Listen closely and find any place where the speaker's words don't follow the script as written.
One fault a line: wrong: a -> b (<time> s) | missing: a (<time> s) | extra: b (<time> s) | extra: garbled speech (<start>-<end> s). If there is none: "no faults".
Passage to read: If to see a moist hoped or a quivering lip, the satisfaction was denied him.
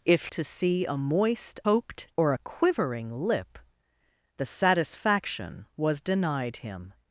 no faults